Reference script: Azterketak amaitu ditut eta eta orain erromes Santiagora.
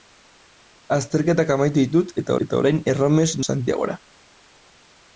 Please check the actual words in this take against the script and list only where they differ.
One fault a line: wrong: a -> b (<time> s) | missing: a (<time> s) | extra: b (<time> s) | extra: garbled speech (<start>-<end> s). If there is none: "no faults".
no faults